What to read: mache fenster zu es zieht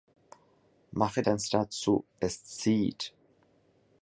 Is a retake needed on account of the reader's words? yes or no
no